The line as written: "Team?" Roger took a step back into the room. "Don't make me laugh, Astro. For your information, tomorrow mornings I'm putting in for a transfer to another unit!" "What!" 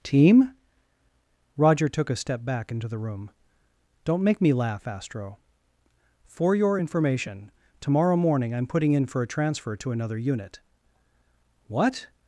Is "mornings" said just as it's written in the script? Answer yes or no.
no